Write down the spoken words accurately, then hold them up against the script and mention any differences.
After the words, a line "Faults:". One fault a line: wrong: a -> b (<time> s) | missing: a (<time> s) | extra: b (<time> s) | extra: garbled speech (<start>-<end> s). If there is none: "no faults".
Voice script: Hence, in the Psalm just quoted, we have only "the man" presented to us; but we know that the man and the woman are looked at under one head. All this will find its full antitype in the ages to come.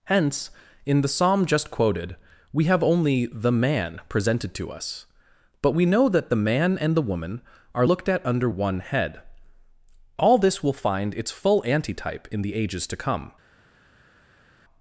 Hence, in the Psalm just quoted, we have only "the man" presented to us; but we know that the man and the woman are looked at under one head. All this will find its full antitype in the ages to come.
Faults:
no faults